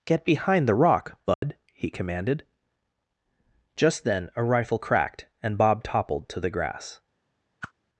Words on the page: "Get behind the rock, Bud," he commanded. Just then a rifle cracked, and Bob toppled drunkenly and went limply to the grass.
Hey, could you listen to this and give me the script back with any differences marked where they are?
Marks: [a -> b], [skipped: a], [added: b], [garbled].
"Get behind the rock, Bud," he commanded. Just then a rifle cracked, and Bob toppled [skipped: drunkenly and went limply] to the grass.